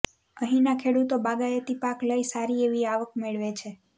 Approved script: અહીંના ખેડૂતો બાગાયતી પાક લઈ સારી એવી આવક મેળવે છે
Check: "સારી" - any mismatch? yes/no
no